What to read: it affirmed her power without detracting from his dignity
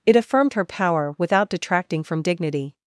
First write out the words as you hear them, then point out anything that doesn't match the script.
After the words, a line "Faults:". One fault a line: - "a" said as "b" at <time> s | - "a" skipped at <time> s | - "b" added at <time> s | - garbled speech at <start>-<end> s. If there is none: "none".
it affirmed her power without detracting from dignity
Faults:
- "his" skipped at 2.2 s